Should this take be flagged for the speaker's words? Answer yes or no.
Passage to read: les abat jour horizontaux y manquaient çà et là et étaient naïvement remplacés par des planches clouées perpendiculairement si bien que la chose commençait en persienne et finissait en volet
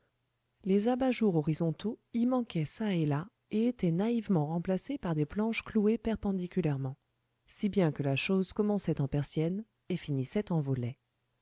no